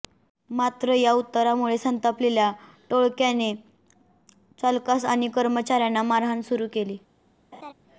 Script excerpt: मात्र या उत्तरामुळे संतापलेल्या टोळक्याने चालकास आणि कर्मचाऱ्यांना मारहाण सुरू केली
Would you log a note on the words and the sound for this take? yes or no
yes